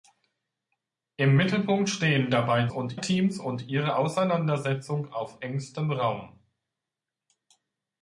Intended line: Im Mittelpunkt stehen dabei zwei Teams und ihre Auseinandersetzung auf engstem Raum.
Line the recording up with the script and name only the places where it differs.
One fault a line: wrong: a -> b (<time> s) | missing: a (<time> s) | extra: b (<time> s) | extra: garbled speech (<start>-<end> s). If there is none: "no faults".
wrong: zwei -> und (2.7 s)